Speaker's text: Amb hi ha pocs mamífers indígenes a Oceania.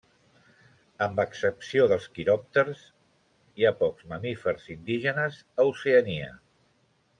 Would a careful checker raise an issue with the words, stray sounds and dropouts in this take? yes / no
yes